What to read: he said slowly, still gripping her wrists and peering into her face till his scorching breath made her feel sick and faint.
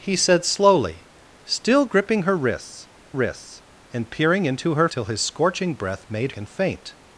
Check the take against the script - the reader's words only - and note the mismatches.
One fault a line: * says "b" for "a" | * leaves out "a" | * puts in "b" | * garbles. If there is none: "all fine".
* puts in "wrists"
* leaves out "face"
* leaves out "her feel sick"